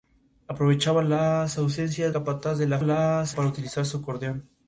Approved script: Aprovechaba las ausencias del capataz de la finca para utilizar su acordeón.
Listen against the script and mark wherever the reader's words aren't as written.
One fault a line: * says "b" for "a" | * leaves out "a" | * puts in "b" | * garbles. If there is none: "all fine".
* leaves out "del"
* says "las" for "finca"